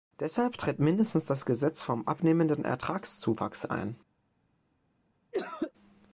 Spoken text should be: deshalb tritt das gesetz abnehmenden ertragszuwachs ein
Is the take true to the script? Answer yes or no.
no